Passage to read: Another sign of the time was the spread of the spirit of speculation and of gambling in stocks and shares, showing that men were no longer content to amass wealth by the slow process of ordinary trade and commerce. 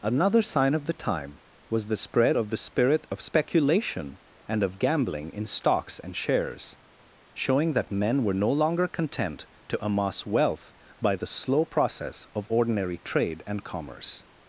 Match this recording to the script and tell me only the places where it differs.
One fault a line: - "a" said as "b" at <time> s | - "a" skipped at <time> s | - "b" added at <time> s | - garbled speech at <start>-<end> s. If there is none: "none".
none